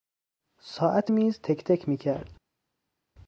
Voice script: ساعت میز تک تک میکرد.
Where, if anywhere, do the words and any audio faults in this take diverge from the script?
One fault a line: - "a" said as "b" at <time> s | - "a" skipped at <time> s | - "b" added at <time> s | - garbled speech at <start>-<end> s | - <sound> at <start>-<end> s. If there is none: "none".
none